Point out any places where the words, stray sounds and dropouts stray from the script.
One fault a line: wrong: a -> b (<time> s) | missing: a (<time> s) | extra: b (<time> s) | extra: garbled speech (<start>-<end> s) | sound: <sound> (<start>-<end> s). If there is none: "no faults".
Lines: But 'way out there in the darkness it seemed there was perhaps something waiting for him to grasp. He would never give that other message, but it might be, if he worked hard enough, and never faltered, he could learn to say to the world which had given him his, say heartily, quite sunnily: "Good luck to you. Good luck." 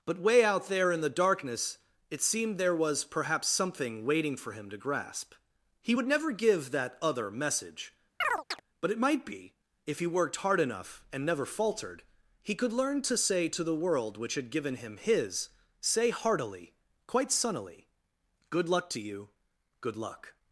sound: chirp (8.2-8.6 s)